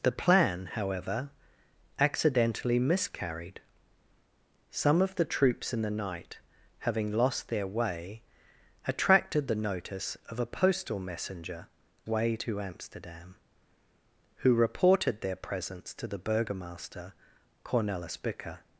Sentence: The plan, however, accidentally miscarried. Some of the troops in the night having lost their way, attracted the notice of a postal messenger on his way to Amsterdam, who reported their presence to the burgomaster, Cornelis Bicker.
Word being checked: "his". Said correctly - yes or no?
no